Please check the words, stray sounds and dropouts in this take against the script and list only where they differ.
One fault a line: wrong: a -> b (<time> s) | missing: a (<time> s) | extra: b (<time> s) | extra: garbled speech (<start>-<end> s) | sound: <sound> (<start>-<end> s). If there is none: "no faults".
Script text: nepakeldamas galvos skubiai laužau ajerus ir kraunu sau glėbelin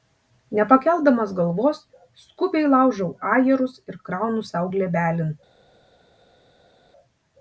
no faults